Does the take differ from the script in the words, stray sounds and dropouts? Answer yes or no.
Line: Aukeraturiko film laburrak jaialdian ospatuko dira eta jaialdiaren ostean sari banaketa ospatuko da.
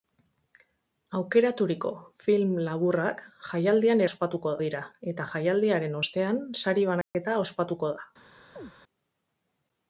yes